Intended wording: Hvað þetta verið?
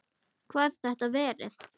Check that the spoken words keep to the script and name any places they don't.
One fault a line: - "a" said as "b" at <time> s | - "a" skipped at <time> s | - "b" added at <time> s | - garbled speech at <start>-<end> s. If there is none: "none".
none